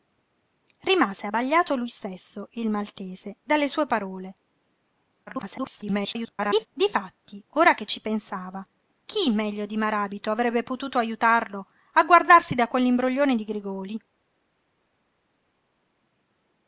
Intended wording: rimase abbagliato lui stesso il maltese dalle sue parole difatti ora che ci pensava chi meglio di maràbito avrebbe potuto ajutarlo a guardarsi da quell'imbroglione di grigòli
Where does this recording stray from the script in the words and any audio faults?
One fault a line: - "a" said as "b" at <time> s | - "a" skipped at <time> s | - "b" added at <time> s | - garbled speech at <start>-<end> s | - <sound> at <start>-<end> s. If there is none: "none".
- garbled speech at 5.3-6.7 s